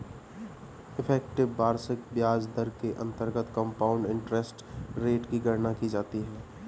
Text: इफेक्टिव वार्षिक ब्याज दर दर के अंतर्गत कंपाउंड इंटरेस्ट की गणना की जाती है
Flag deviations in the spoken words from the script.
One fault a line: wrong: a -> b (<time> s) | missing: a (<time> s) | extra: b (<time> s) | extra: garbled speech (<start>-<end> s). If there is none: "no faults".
missing: दर (2.7 s)
extra: रेट (5.0 s)